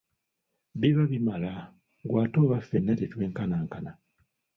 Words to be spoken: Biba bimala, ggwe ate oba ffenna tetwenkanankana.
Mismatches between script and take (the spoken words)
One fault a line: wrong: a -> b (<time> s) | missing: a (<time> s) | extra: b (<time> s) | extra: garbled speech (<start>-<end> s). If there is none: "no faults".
no faults